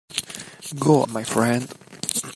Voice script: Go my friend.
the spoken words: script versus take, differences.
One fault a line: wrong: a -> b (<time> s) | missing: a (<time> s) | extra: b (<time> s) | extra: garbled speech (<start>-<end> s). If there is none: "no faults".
no faults